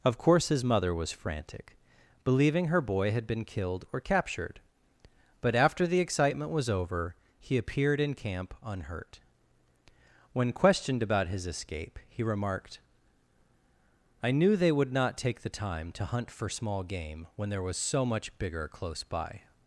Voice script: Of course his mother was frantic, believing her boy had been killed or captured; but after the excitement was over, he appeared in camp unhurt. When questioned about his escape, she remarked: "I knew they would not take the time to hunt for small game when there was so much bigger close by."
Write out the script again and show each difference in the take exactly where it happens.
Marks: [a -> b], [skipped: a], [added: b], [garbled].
Of course his mother was frantic, believing her boy had been killed or captured; but after the excitement was over, he appeared in camp unhurt. When questioned about his escape, [she -> he] remarked: "I knew they would not take the time to hunt for small game when there was so much bigger close by."